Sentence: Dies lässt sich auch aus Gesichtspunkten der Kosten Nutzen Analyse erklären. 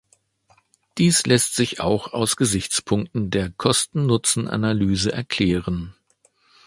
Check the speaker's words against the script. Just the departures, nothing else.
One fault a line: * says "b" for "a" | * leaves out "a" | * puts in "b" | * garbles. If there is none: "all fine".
all fine